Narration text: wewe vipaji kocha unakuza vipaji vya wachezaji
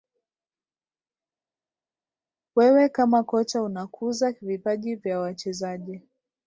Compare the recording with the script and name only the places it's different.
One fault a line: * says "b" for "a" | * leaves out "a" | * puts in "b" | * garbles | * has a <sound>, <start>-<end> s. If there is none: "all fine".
* says "kama" for "vipaji"